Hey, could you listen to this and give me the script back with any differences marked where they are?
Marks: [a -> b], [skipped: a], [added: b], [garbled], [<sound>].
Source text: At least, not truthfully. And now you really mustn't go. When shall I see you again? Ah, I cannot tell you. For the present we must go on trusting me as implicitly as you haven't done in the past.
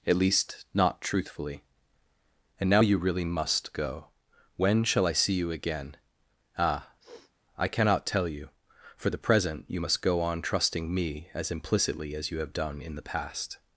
At least, not truthfully. And now you really [mustn't -> must] go. When shall I see you again? Ah, [sniff] I cannot tell you. For the present [we -> you] must go on trusting me as implicitly as you [haven't -> have] done in the past.